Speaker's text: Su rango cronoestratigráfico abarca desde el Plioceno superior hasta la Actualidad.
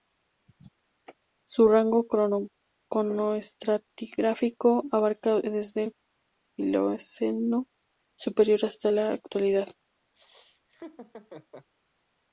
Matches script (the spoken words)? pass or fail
pass